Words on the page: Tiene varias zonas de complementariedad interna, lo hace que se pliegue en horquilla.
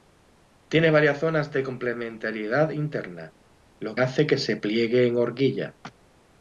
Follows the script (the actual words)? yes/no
yes